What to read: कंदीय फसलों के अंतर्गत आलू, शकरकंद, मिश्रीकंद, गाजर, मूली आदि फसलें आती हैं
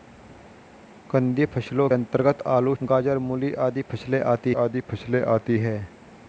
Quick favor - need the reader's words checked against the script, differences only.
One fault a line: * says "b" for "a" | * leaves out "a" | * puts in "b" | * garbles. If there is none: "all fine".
* leaves out "के"
* says "गाजर मूली आदि फसलें आती" for "शकरकंद मिश्रीकंद गाजर मूली"